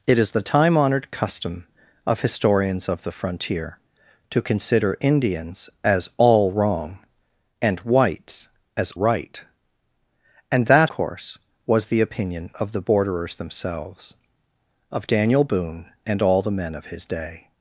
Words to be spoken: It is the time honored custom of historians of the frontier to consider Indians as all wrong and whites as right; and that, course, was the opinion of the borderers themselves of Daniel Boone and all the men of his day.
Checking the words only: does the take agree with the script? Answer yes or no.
yes